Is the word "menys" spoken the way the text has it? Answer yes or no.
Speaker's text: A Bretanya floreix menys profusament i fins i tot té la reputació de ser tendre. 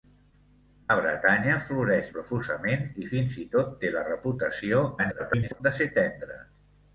no